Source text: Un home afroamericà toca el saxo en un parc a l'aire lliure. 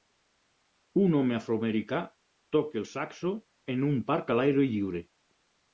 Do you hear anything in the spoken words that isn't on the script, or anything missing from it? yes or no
no